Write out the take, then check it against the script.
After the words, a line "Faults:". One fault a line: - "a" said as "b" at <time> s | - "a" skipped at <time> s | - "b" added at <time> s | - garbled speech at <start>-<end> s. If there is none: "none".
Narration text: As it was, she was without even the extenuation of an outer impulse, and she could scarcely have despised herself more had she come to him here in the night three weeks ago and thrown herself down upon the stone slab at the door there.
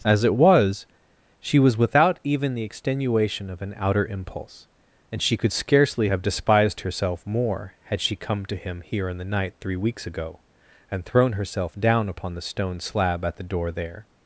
As it was, she was without even the extenuation of an outer impulse, and she could scarcely have despised herself more had she come to him here in the night three weeks ago and thrown herself down upon the stone slab at the door there.
Faults:
none